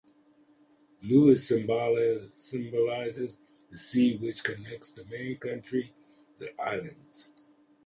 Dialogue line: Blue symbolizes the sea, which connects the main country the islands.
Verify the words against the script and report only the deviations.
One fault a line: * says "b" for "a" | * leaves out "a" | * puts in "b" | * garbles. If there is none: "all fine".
all fine